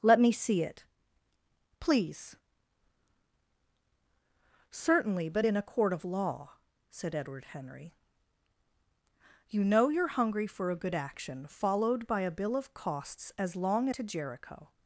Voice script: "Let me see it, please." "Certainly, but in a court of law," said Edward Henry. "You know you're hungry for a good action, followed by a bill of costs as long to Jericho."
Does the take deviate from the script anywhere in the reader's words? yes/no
no